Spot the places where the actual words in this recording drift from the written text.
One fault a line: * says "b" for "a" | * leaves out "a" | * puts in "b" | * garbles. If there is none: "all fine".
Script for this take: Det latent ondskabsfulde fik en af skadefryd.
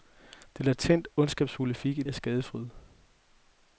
all fine